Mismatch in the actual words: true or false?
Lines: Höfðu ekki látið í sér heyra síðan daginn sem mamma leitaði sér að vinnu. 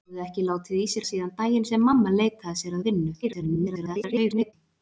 true